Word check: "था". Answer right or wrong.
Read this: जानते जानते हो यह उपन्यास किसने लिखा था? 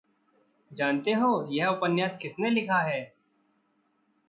wrong